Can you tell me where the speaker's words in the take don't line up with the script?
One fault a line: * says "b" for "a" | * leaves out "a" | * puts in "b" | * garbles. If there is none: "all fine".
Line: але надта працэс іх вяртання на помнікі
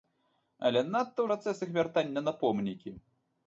all fine